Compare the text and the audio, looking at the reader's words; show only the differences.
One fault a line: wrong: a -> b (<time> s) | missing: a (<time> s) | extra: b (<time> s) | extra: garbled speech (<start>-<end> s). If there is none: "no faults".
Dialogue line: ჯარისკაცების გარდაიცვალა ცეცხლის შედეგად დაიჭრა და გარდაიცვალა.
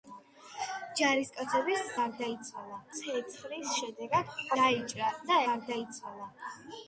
no faults